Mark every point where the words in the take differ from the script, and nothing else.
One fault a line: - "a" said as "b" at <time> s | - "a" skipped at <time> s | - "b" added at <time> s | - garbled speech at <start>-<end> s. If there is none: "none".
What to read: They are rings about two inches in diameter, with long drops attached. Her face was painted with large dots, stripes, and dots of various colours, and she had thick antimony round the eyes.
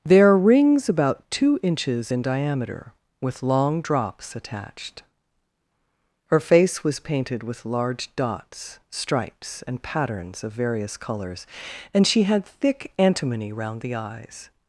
- "dots" said as "patterns" at 9.8 s